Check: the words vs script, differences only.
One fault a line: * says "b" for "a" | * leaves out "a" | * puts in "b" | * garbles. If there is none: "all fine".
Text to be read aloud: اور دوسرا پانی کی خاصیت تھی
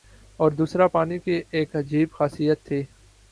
* puts in "ایک عجیب"